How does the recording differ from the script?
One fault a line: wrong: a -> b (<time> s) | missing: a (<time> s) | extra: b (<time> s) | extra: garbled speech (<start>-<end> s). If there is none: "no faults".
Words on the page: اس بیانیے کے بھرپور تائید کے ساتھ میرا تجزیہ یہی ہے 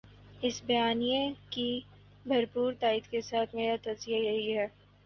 wrong: کے -> کی (1.5 s)